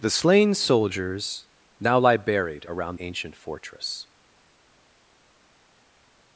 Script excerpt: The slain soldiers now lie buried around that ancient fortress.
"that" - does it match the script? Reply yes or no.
no